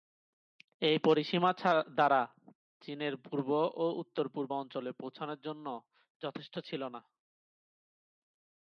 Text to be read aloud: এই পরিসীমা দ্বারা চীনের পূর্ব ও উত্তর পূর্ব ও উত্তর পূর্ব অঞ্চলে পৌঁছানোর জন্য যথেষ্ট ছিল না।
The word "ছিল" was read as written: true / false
true